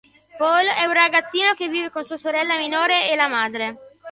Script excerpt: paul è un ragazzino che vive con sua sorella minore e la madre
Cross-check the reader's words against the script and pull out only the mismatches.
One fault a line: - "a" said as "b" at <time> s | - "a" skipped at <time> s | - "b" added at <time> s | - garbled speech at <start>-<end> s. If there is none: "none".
none